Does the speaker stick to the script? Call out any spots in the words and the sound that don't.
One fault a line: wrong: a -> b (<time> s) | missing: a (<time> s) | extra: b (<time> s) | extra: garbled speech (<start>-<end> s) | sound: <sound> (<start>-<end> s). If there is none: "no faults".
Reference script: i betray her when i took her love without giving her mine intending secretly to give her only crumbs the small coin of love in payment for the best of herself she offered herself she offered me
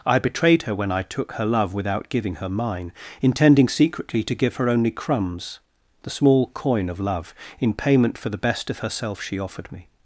wrong: betray -> betrayed (0.2 s)
missing: herself she offered (9.7 s)